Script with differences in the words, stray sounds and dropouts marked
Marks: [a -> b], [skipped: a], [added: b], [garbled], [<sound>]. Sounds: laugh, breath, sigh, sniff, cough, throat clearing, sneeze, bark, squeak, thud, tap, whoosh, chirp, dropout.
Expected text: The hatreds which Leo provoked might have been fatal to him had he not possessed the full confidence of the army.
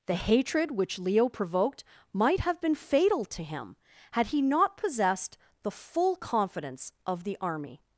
The [hatreds -> hatred] which Leo provoked might have been fatal to him had he not possessed the full confidence of the army.